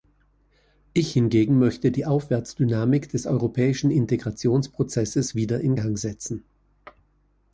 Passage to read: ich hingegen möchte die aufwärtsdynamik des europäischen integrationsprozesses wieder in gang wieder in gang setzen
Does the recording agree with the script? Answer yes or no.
no